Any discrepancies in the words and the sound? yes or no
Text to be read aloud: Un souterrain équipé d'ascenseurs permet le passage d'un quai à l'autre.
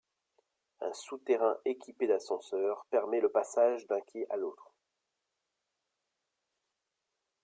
no